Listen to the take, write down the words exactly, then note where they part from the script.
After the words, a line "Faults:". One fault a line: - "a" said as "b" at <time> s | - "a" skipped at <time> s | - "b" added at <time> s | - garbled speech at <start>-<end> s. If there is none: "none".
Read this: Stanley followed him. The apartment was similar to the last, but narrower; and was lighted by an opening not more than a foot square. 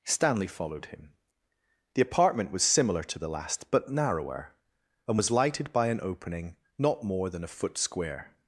Stanley followed him. The apartment was similar to the last, but narrower; and was lighted by an opening not more than a foot square.
Faults:
none